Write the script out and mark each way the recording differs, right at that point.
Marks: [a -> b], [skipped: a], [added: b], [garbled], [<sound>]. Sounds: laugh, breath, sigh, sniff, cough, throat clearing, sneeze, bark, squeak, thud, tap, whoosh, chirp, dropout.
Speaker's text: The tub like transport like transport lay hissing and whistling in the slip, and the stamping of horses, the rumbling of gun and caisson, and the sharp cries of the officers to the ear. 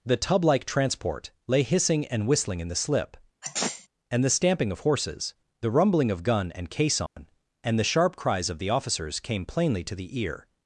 The tub like transport [skipped: like transport] lay hissing and whistling in the slip, [sneeze] and the stamping of horses, the rumbling of gun and caisson, [dropout] and the sharp cries of the officers [added: came plainly] to the ear.